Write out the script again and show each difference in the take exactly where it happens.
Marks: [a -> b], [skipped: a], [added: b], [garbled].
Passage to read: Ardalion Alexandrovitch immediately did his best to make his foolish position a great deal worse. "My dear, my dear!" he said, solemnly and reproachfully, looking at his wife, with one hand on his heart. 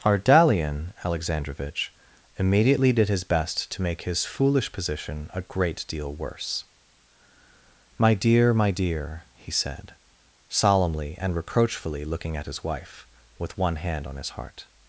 Ardalion Alexandrovitch immediately did his best to make his foolish position a great deal worse. "My dear, my dear!" he said, solemnly and reproachfully, looking at his wife, with one hand on his heart.